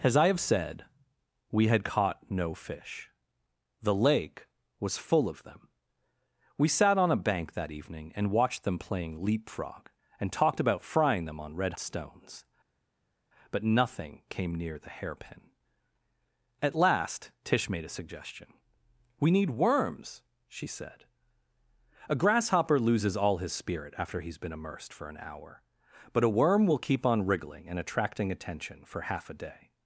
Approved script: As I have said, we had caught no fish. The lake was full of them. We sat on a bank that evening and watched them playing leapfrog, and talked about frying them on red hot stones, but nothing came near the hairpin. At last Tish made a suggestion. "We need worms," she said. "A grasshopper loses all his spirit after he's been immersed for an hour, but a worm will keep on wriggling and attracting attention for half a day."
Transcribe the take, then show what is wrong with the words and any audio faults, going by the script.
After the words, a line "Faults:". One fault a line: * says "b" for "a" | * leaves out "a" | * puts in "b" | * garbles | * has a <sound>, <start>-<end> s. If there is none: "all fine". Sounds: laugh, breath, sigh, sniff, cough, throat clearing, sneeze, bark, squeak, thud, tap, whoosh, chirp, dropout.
As I have said, we had caught no fish. The lake was full of them. We sat on a bank that evening and watched them playing leapfrog, and talked about frying them on red stones, but nothing came near the hairpin. At last Tish made a suggestion. "We need worms," she said. "A grasshopper loses all his spirit after he's been immersed for an hour, but a worm will keep on wriggling and attracting attention for half a day."
Faults:
* leaves out "hot"